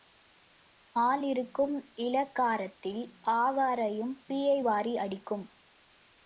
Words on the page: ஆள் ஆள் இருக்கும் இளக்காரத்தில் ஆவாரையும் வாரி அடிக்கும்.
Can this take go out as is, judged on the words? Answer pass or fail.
fail